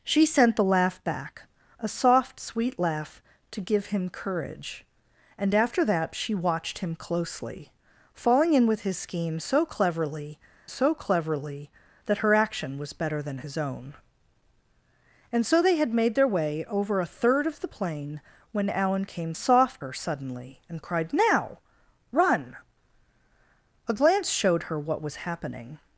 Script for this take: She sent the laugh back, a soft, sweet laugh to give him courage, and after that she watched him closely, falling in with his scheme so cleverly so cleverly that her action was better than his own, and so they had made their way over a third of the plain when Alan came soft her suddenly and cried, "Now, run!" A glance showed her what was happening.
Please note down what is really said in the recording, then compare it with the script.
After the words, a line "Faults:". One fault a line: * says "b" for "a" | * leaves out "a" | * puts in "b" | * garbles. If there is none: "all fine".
She sent the laugh back, a soft, sweet laugh to give him courage, and after that she watched him closely, falling in with his scheme so cleverly so cleverly that her action was better than his own, and so they had made their way over a third of the plain when Alan came soft her suddenly and cried, "Now, run!" A glance showed her what was happening.
Faults:
all fine